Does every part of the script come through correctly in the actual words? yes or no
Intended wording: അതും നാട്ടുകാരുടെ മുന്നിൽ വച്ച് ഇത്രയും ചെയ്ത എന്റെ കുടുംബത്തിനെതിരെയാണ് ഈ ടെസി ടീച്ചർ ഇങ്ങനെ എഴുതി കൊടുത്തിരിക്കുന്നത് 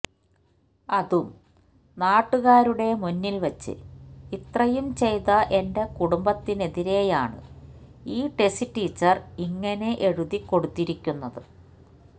yes